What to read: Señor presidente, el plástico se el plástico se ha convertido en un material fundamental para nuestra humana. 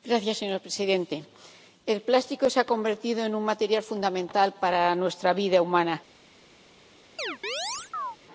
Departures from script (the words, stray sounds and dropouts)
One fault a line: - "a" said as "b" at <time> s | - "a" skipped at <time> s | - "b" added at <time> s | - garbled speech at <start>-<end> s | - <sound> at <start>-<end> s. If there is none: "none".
- "el plástico se" skipped at 2.6 s
- "vida" added at 5.3 s
- chirp at 7.2-8.2 s